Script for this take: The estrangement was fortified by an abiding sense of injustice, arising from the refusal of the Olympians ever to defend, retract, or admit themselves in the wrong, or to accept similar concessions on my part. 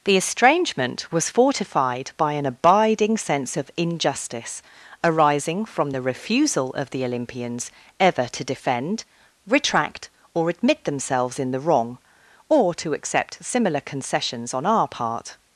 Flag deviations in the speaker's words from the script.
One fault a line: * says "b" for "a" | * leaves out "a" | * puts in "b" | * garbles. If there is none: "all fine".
* says "our" for "my"